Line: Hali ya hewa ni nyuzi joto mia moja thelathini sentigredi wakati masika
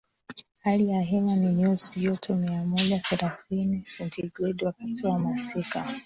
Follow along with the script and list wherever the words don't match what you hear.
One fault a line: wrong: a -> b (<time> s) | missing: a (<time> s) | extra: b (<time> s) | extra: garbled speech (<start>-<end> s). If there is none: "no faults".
extra: wa (5.1 s)